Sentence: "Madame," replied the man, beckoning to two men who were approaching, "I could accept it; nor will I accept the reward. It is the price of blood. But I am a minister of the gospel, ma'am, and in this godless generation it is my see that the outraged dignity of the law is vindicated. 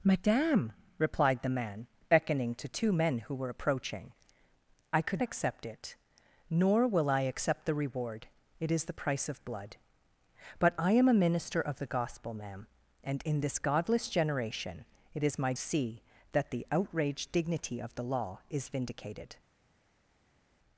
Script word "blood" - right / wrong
right